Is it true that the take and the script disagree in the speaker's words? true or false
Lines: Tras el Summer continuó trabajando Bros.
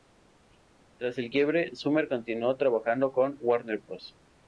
true